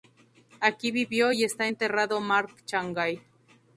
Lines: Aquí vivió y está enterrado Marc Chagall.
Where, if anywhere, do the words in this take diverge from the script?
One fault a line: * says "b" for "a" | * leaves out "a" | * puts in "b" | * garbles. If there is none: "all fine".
all fine